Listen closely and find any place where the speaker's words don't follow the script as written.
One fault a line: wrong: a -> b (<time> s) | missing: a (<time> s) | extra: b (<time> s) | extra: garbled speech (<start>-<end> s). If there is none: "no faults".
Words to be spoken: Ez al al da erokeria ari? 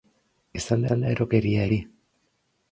no faults